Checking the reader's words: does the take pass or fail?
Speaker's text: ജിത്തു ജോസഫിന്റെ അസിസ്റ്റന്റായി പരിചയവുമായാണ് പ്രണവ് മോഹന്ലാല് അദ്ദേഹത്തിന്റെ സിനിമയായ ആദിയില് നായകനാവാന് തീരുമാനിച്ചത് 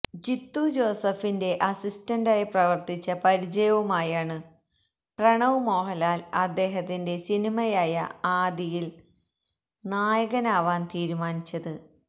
fail